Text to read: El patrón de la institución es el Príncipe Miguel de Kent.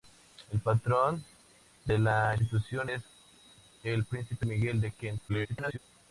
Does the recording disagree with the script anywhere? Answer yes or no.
yes